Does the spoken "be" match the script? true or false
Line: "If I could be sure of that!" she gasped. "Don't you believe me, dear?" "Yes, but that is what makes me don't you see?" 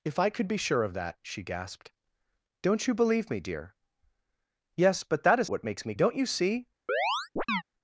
true